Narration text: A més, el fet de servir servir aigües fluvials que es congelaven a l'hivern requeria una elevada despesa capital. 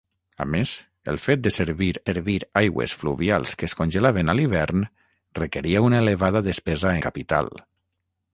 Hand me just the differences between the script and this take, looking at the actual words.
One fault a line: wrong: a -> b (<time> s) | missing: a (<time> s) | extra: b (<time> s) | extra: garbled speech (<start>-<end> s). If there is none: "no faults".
no faults